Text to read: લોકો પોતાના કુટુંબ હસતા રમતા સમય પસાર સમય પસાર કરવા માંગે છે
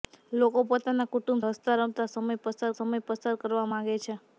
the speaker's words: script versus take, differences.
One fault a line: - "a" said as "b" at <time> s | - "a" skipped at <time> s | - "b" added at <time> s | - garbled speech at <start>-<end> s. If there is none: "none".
none